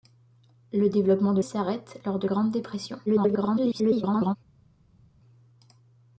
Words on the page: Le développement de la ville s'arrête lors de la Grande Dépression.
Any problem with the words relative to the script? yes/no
yes